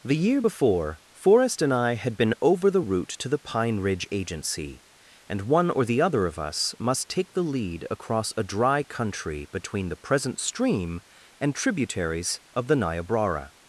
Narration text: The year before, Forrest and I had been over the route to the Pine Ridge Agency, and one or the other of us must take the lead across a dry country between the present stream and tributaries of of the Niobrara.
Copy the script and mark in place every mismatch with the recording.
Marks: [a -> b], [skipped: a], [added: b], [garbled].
The year before, Forrest and I had been over the route to the Pine Ridge Agency, and one or the other of us must take the lead across a dry country between the present stream and tributaries of [skipped: of] the Niobrara.